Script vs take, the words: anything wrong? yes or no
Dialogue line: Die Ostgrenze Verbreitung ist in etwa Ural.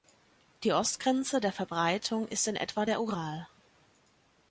yes